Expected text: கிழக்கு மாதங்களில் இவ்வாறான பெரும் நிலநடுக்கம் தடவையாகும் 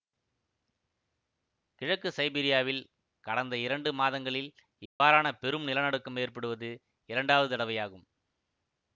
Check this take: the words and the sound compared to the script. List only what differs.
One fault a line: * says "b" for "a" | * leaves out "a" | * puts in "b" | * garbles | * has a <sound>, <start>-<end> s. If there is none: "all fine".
* puts in "சைபீரியாவில் கடந்த இரண்டு"
* has a dropout, 4.9-5.0 s
* puts in "ஏற்படுவது இரண்டாவது"